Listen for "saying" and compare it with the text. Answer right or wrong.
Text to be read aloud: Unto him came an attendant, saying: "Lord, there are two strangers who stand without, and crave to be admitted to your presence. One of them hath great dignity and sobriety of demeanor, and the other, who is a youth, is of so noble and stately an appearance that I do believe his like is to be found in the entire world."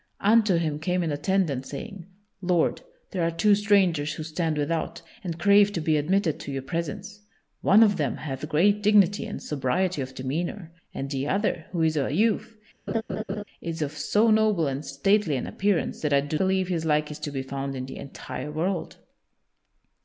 right